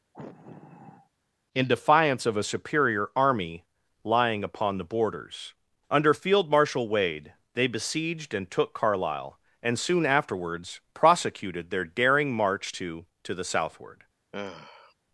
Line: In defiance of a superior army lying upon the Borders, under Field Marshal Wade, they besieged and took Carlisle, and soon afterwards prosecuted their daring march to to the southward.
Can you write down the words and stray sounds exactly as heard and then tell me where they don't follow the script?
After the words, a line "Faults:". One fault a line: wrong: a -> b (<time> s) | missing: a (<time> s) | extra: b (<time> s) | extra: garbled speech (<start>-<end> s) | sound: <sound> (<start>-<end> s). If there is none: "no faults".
In defiance of a superior army lying upon the Borders, under Field Marshal Wade, they besieged and took Carlisle, and soon afterwards prosecuted their daring march to to the southward.
Faults:
sound: sigh (0.1-1.1 s)
sound: sigh (14.3-14.9 s)